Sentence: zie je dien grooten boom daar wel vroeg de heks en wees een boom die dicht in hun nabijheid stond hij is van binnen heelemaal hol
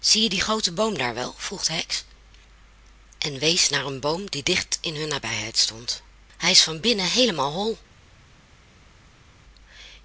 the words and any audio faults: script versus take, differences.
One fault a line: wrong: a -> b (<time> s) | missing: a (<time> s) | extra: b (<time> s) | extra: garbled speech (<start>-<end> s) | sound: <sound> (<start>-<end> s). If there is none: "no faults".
extra: naar (3.7 s)